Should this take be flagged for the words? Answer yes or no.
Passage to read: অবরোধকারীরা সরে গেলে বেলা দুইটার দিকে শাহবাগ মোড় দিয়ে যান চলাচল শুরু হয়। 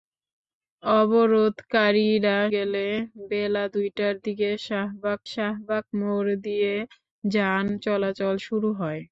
yes